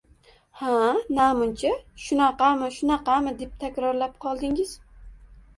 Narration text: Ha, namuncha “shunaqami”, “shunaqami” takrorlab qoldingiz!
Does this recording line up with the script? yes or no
no